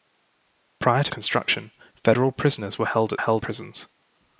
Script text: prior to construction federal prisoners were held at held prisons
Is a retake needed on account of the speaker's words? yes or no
no